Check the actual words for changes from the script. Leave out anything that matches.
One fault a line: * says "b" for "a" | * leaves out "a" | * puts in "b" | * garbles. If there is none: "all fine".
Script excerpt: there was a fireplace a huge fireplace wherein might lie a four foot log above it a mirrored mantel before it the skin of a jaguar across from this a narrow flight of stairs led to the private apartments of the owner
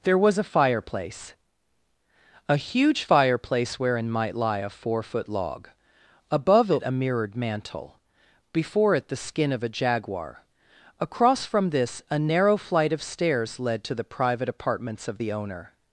all fine